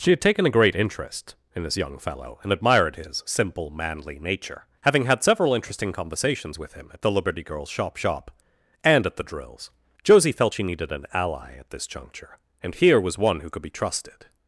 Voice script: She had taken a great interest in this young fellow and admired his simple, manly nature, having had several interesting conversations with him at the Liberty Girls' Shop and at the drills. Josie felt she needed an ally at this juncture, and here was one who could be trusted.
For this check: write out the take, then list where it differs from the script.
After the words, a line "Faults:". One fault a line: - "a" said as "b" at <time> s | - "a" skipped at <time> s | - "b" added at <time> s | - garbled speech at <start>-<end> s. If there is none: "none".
She had taken a great interest in this young fellow and admired his simple, manly nature, having had several interesting conversations with him at the Liberty Girls' Shop Shop and at the drills. Josie felt she needed an ally at this juncture, and here was one who could be trusted.
Faults:
- "Shop" added at 8.0 s